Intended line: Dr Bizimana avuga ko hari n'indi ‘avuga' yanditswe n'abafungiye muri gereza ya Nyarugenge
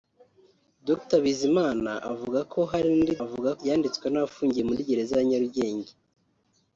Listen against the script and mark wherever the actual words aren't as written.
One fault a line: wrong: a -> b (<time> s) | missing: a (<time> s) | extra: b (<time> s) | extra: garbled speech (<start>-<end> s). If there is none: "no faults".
no faults